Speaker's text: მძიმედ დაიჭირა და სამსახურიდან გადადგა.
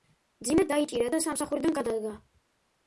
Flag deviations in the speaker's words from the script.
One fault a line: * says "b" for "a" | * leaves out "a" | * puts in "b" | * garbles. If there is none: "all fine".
all fine